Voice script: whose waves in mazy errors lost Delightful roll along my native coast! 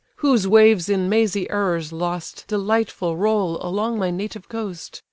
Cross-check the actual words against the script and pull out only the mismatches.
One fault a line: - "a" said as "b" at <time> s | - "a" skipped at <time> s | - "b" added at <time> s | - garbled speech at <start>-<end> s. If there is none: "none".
none